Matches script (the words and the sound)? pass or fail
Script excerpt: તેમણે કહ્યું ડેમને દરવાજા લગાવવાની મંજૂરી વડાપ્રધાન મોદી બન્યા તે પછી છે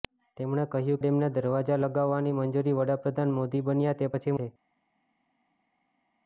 pass